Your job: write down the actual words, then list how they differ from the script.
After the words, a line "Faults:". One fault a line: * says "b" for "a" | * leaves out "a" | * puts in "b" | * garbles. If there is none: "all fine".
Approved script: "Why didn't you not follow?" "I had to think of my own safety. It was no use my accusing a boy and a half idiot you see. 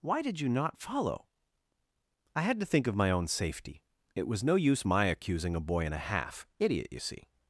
"Why did you not follow?" "I had to think of my own safety. It was no use my accusing a boy and a half idiot you see.
Faults:
* says "did" for "didn't"